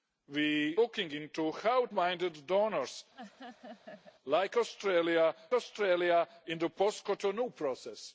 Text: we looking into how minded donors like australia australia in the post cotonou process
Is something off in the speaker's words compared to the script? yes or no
no